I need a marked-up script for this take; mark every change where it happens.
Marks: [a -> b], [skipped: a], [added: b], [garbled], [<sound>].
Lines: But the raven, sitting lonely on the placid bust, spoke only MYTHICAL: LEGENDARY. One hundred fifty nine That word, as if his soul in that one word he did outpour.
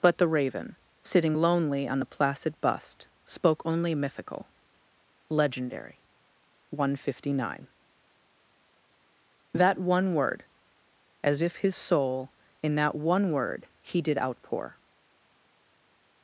But the raven, sitting lonely on the placid bust, spoke only MYTHICAL: LEGENDARY. One hundred fifty nine That [added: one] word, as if his soul in that one word he did outpour.